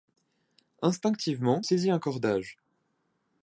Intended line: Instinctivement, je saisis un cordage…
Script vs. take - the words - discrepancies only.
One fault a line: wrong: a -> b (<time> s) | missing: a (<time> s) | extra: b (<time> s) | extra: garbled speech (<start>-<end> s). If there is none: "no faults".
missing: je (1.6 s)